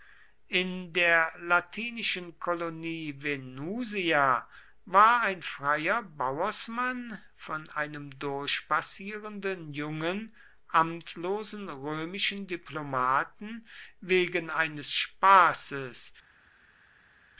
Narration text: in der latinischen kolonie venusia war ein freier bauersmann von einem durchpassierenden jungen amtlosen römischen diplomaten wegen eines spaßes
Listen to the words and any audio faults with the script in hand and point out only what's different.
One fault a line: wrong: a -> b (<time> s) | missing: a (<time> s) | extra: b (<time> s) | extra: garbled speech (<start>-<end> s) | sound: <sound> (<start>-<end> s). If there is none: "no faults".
no faults